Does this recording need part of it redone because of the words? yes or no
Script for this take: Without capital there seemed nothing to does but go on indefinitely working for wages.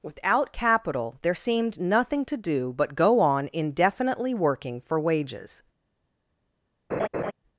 yes